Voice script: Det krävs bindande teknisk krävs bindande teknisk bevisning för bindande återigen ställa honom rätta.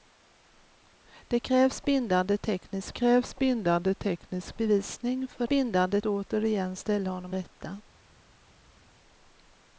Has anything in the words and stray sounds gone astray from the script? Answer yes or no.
no